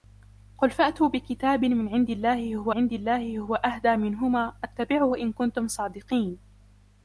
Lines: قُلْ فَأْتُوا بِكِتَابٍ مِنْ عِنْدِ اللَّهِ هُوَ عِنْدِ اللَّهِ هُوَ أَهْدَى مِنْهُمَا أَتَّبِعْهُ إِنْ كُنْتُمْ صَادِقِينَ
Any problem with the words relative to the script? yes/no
no